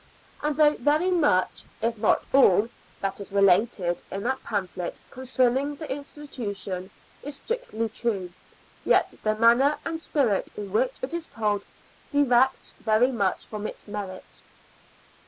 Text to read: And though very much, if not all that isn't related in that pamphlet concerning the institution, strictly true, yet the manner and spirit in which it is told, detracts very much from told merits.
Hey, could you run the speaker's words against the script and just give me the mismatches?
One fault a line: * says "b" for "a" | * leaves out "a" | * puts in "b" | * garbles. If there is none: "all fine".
* says "is" for "isn't"
* puts in "is"
* says "its" for "told"